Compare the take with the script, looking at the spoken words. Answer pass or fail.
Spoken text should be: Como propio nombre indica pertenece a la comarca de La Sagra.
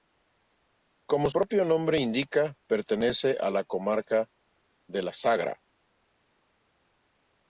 pass